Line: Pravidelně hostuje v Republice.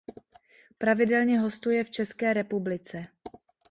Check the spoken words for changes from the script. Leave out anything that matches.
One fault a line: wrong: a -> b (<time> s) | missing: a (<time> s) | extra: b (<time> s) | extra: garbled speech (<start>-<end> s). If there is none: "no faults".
extra: České (1.9 s)